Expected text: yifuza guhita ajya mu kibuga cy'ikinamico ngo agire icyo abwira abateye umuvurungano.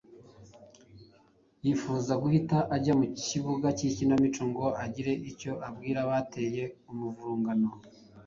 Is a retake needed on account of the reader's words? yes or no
no